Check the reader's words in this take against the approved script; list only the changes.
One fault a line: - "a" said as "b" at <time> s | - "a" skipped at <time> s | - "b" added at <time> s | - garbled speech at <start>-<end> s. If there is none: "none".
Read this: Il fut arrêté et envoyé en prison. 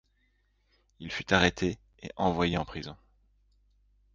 none